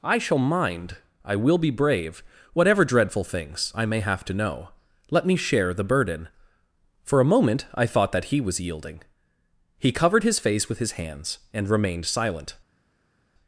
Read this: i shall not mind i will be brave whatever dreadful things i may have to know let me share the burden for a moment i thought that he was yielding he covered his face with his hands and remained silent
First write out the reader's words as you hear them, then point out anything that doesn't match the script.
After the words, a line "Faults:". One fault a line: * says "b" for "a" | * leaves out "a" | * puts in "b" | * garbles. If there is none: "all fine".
i shall mind i will be brave whatever dreadful things i may have to know let me share the burden for a moment i thought that he was yielding he covered his face with his hands and remained silent
Faults:
* leaves out "not"